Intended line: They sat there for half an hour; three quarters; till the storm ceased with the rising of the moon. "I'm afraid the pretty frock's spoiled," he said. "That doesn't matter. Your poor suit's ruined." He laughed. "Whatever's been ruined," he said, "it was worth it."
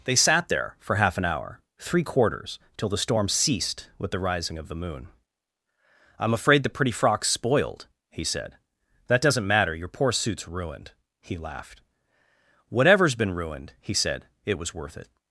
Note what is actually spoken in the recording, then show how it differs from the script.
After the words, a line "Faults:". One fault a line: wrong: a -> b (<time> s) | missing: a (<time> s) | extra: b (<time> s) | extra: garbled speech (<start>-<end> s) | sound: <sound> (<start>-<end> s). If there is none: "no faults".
They sat there for half an hour; three quarters; till the storm ceased with the rising of the moon. "I'm afraid the pretty frock's spoiled," he said. "That doesn't matter. Your poor suit's ruined." He laughed. "Whatever's been ruined," he said, "it was worth it."
Faults:
no faults